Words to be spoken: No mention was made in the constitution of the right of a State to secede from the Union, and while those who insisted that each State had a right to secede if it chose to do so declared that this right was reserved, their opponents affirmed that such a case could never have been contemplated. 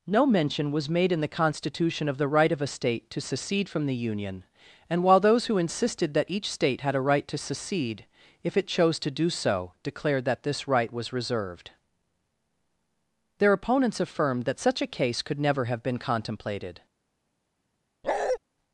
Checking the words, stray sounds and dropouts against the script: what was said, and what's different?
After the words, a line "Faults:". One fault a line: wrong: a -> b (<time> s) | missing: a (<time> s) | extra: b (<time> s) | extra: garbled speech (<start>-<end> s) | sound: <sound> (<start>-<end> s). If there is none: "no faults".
No mention was made in the constitution of the right of a State to secede from the Union, and while those who insisted that each State had a right to secede if it chose to do so declared that this right was reserved, their opponents affirmed that such a case could never have been contemplated.
Faults:
sound: bark (18.0-18.4 s)